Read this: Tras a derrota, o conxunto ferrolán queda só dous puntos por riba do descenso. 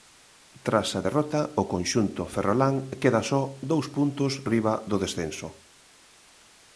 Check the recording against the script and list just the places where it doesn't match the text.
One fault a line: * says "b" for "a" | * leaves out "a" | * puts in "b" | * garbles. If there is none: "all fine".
* leaves out "por"